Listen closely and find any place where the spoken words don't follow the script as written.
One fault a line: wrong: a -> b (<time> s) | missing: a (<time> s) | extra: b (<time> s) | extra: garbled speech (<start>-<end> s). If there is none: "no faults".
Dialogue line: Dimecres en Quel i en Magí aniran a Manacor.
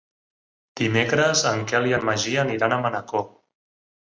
no faults